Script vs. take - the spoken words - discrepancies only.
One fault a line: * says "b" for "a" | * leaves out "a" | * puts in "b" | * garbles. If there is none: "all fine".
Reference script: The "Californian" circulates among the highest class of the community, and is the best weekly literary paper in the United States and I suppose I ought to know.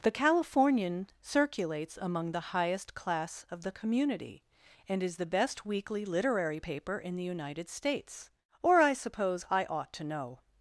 * says "or" for "and"